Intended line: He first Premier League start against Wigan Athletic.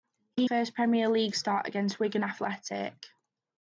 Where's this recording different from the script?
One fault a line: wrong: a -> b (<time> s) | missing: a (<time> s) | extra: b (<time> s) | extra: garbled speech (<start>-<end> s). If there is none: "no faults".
no faults